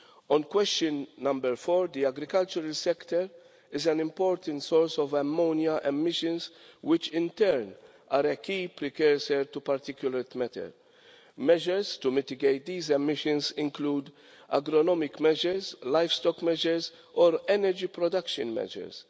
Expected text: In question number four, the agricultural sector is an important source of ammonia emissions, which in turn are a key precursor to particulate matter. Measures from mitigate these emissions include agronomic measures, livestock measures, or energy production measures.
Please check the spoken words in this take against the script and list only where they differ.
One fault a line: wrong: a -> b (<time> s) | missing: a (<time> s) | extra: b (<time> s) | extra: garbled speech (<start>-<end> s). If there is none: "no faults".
wrong: In -> On (0.3 s)
wrong: from -> to (12.0 s)